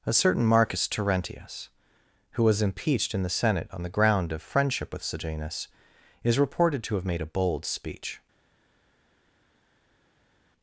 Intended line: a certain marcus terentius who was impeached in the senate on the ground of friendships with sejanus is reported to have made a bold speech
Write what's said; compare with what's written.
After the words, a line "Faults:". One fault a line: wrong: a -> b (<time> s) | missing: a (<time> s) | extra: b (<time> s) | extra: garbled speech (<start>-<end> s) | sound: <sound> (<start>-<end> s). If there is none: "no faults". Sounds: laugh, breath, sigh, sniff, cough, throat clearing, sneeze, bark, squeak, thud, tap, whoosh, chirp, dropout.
a certain marcus terentius who was impeached in the senate on the ground of friendship with sejanus is reported to have made a bold speech
Faults:
wrong: friendships -> friendship (4.4 s)